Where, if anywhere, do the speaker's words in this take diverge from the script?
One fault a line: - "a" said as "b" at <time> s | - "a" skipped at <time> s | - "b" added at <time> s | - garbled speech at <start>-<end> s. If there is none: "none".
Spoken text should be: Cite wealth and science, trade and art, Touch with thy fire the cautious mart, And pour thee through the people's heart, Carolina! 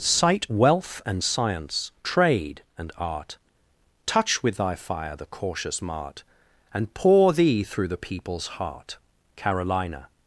none